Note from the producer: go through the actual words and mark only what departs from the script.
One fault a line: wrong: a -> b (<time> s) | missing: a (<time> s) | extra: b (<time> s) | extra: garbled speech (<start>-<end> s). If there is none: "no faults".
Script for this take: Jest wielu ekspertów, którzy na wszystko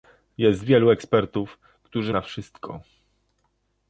no faults